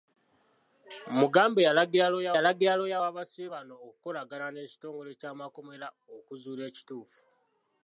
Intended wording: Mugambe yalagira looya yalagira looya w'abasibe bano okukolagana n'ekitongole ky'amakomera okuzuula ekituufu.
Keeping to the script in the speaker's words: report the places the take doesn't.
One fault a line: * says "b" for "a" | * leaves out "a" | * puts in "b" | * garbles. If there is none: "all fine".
all fine